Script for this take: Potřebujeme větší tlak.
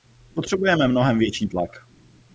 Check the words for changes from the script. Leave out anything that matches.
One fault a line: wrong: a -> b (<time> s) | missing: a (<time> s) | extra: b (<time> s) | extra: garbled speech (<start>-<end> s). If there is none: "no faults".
extra: mnohem (0.9 s)